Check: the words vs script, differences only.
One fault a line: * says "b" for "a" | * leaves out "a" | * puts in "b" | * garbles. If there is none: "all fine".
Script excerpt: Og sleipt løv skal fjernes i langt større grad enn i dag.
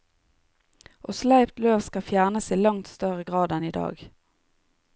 all fine